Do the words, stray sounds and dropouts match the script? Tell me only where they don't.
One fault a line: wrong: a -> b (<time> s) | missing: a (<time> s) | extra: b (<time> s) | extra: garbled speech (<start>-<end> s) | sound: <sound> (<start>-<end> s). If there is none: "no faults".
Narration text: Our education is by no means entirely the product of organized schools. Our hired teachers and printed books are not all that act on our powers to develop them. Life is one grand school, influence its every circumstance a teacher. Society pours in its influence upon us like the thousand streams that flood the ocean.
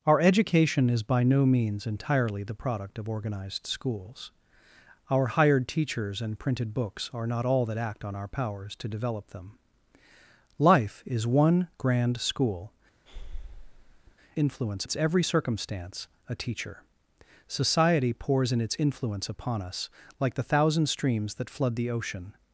sound: breath (13.1-14.2 s)